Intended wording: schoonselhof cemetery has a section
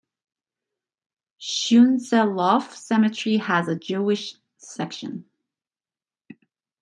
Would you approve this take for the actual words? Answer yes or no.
no